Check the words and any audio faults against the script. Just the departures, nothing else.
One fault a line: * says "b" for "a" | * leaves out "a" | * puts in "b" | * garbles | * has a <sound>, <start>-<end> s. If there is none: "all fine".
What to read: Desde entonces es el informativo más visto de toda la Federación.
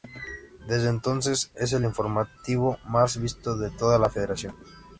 all fine